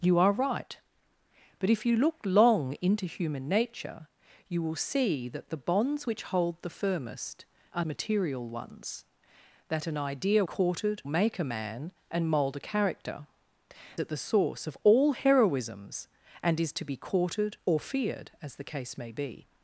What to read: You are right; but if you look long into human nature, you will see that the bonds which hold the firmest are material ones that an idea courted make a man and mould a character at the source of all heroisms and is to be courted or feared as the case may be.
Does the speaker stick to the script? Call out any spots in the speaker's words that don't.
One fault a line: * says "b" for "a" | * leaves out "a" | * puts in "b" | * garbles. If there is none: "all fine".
all fine